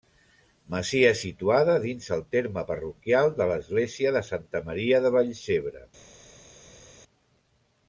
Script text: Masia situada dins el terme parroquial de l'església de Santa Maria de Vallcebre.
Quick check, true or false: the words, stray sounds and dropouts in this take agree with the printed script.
true